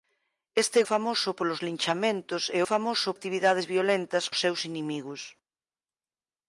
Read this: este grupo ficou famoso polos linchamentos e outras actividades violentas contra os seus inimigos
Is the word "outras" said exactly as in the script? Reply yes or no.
no